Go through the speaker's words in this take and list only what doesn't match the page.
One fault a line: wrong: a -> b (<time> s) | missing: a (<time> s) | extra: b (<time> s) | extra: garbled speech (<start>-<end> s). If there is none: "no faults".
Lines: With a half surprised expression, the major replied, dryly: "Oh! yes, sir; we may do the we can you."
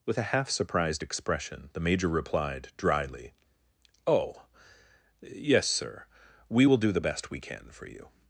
wrong: may -> will (6.6 s)
extra: best (7.0 s)
extra: for (7.7 s)